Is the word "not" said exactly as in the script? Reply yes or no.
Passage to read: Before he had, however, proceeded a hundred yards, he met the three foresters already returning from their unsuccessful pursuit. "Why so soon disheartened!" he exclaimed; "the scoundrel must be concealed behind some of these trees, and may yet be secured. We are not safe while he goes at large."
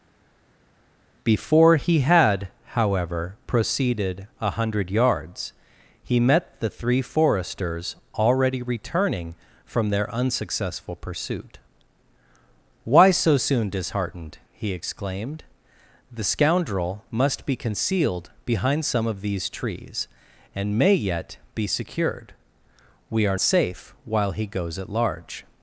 no